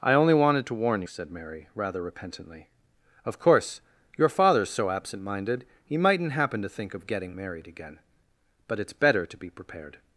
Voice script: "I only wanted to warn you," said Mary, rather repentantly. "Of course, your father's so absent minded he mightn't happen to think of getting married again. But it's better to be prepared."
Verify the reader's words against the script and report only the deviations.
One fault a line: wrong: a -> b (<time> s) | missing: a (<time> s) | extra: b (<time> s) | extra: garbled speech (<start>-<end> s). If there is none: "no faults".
missing: you (1.0 s)